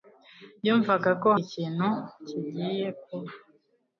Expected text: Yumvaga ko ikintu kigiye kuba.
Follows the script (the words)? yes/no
yes